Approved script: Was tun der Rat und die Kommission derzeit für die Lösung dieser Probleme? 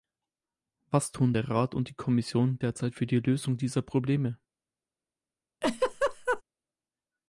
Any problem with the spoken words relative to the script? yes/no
no